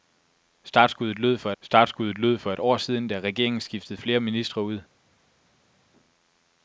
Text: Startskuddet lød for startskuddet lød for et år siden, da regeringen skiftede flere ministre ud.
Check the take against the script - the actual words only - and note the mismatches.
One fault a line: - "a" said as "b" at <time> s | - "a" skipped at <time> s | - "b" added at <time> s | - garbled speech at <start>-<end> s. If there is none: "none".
none